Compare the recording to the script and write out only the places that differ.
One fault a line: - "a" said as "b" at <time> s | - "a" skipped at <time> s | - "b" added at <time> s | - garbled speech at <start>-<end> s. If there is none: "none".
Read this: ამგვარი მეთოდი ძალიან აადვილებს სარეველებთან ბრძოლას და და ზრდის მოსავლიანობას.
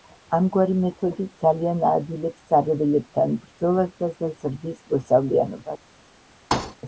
none